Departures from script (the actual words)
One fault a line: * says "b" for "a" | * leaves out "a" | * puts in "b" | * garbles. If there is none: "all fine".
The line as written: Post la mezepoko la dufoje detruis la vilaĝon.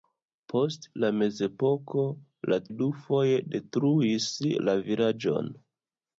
all fine